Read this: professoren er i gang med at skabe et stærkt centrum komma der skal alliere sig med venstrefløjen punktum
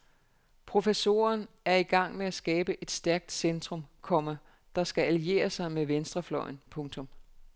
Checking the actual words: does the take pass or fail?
pass